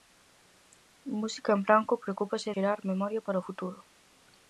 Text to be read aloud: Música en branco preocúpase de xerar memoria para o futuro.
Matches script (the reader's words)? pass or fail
fail